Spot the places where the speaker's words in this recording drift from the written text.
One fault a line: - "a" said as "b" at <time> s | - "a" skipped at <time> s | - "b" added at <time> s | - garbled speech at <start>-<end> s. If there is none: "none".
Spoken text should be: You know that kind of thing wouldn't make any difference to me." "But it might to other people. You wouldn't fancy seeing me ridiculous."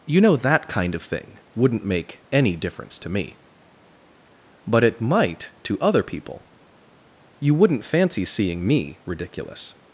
none